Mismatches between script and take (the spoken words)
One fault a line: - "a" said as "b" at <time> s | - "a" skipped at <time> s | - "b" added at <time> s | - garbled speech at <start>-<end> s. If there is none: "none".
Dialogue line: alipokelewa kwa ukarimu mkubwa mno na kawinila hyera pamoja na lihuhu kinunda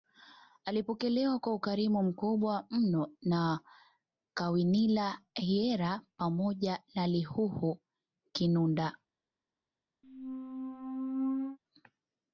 none